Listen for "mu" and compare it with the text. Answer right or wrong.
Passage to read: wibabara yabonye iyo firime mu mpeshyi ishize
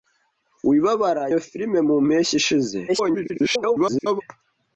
right